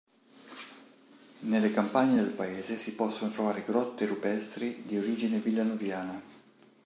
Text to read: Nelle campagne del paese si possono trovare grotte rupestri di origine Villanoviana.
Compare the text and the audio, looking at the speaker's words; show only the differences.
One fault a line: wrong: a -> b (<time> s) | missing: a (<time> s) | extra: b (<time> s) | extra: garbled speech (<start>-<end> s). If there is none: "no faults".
no faults